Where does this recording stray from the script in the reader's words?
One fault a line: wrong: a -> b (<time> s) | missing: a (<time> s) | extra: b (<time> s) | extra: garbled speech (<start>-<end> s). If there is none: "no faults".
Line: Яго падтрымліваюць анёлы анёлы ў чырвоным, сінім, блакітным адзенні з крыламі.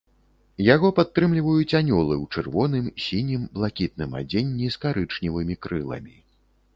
missing: анёлы (2.1 s)
extra: карычневымі (4.9 s)